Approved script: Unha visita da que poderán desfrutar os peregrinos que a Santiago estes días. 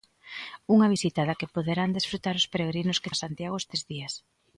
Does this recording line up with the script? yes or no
yes